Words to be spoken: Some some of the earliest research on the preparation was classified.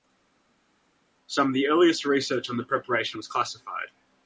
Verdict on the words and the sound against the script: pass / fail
fail